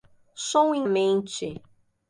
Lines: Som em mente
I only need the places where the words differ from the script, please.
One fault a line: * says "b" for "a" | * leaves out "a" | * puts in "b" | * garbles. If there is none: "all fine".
all fine